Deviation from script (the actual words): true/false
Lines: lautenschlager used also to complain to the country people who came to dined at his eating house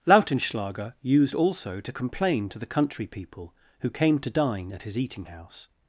true